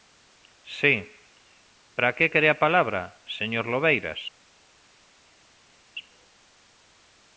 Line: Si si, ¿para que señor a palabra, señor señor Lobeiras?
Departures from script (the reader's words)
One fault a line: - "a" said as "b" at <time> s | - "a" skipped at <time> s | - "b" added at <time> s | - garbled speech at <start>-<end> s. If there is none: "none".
- "si" skipped at 1.1 s
- "señor" said as "quere" at 2.3 s
- "señor" skipped at 3.7 s